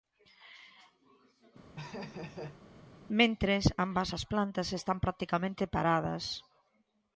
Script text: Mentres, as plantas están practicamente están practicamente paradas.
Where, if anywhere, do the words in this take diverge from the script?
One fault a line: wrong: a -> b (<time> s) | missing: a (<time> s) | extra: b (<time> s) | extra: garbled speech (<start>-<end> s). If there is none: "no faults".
extra: ambas (3.9 s)
missing: están practicamente (5.6 s)